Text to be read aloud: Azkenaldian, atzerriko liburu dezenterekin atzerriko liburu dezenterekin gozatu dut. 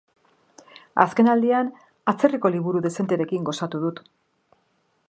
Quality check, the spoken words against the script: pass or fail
fail